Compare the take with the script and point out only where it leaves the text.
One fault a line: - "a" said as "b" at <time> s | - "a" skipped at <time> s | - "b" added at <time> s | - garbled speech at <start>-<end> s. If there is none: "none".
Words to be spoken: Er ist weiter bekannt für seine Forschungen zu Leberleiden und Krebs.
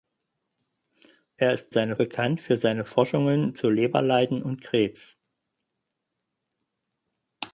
- "weiter" said as "seine" at 1.7 s